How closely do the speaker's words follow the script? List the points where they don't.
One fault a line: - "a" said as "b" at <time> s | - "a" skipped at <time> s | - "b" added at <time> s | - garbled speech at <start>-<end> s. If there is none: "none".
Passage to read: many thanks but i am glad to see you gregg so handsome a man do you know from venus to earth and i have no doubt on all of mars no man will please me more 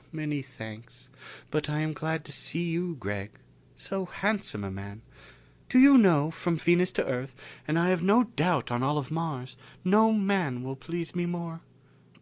none